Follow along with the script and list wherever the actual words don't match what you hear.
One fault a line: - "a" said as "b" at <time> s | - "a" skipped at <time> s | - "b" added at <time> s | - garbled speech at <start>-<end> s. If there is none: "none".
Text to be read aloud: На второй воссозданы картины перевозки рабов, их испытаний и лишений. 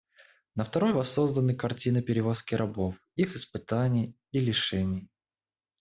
none